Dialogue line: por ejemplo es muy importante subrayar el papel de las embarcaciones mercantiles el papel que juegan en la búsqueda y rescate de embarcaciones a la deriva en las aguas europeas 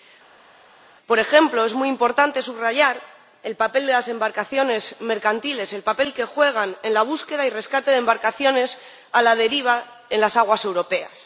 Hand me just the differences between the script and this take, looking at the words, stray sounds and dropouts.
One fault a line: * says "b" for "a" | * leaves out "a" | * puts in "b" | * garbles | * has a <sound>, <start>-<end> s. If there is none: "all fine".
all fine